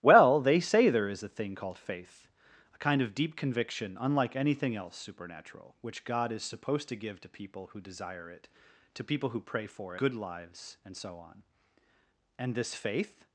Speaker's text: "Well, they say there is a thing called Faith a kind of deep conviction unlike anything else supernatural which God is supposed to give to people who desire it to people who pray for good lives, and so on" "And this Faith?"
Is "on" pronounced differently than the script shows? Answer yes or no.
no